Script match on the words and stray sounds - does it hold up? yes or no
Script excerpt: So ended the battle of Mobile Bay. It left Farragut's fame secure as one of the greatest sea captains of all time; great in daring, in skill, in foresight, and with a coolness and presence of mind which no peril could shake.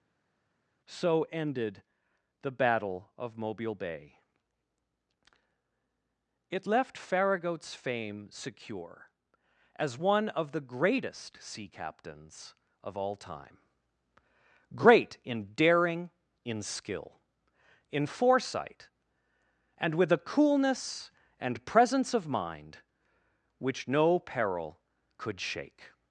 yes